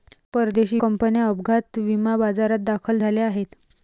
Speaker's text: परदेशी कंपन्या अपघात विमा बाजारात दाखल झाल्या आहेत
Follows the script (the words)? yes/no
yes